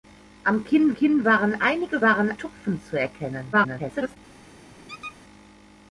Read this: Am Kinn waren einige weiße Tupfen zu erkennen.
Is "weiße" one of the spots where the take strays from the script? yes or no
yes